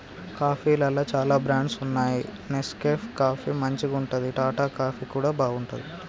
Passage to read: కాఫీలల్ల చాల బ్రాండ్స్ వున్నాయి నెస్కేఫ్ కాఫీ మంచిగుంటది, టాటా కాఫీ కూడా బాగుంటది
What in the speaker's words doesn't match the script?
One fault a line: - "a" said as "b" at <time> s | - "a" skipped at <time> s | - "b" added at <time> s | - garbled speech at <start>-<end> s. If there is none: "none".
none